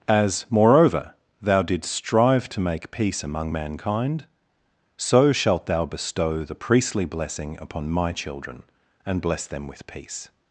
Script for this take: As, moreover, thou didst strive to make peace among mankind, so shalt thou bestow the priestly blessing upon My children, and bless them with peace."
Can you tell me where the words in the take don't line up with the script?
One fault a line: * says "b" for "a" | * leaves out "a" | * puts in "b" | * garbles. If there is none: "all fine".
all fine